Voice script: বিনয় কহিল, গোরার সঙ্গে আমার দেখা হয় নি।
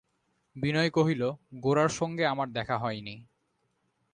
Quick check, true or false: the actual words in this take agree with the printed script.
true